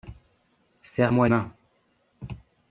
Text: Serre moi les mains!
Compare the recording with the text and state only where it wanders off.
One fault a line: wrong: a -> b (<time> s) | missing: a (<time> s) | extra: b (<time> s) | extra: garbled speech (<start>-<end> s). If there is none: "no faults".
missing: les (1.3 s)